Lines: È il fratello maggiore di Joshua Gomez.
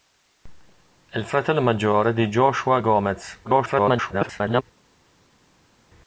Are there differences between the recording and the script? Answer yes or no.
yes